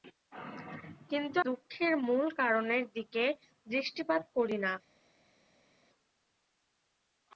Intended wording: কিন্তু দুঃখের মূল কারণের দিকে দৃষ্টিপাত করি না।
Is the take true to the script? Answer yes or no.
yes